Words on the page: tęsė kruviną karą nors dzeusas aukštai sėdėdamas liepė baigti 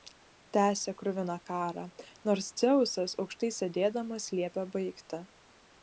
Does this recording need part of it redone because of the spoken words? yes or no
no